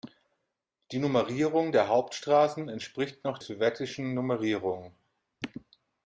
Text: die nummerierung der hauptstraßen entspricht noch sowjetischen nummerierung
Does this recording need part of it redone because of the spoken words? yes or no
no